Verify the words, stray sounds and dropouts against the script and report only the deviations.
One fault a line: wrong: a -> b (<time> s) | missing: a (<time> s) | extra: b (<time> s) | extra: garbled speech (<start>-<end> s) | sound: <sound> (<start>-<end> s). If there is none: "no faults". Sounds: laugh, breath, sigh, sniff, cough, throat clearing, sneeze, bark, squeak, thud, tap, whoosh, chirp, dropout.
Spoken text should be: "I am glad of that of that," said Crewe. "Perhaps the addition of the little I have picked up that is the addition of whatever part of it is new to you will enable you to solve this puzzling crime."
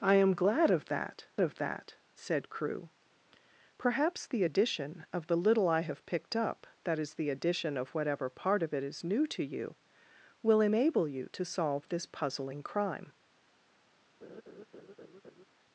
sound: laugh (14.2-15.4 s)